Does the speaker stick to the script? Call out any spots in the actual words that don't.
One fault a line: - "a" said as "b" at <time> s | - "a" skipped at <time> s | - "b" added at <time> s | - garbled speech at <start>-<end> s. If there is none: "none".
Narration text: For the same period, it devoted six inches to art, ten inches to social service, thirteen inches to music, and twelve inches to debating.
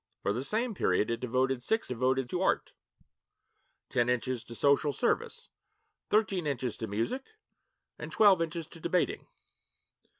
- "inches" said as "devoted" at 1.9 s